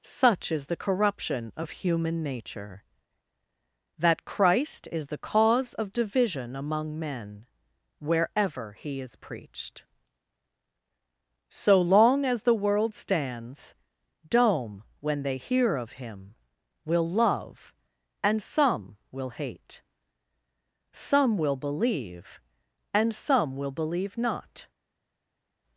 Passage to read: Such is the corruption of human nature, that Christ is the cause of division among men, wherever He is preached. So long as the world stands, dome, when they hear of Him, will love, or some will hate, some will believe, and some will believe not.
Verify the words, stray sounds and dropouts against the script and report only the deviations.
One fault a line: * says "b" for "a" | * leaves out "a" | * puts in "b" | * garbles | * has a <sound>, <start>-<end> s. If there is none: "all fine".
* says "and" for "or"